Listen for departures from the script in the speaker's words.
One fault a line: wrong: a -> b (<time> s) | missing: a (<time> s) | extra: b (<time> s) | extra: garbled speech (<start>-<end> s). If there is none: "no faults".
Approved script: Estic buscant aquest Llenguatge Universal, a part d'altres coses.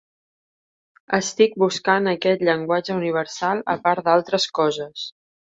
no faults